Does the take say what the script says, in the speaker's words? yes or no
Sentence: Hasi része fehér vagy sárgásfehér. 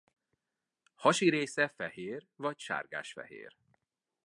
yes